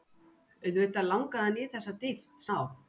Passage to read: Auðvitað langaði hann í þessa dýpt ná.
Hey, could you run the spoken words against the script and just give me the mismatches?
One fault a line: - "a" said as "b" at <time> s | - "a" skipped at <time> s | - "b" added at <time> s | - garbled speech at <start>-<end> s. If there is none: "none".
none